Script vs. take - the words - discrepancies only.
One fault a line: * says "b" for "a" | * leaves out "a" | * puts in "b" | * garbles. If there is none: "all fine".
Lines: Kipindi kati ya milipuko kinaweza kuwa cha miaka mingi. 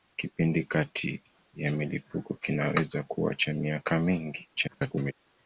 * garbles